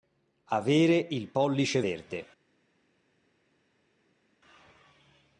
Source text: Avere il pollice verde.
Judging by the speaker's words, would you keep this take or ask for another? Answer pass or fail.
pass